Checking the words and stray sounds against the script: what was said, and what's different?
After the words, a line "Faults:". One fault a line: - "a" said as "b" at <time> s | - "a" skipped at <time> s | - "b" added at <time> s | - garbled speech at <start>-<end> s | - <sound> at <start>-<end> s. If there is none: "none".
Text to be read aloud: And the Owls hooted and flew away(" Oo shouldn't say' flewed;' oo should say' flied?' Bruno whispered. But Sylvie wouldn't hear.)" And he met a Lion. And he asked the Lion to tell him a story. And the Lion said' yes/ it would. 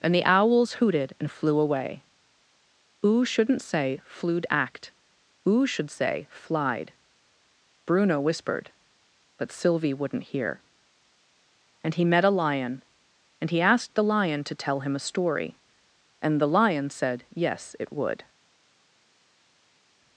And the Owls hooted and flew away(" Oo shouldn't say' flewed;' act oo should say' flied?' Bruno whispered. But Sylvie wouldn't hear.)" And he met a Lion. And he asked the Lion to tell him a story. And the Lion said' yes/ it would.
Faults:
- "act" added at 4.5 s